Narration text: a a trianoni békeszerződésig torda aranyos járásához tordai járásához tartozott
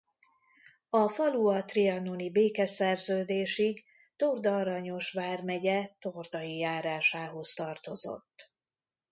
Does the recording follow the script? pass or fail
fail